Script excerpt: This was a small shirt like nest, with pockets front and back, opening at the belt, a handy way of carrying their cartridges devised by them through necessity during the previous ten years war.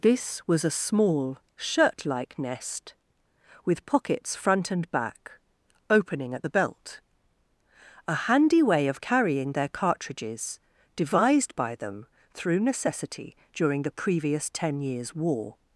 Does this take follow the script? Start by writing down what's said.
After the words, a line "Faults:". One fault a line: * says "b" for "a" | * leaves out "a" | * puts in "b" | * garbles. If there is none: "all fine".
This was a small shirt like nest, with pockets front and back, opening at the belt, a handy way of carrying their cartridges devised by them through necessity during the previous ten years war.
Faults:
all fine